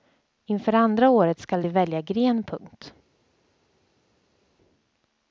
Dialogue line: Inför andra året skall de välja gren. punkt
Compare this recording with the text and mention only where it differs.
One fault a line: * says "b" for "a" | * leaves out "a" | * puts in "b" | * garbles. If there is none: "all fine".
all fine